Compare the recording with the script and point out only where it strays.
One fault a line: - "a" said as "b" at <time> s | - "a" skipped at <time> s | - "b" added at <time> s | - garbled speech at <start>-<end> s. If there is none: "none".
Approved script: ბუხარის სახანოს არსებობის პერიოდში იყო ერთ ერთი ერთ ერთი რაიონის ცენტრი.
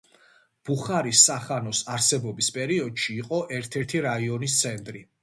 - "ერთ ერთი" skipped at 4.0 s